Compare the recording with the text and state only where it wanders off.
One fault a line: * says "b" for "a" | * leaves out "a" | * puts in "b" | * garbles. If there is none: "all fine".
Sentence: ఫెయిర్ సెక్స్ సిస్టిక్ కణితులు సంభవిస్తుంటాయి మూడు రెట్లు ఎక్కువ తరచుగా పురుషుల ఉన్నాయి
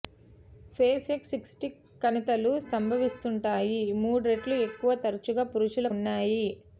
all fine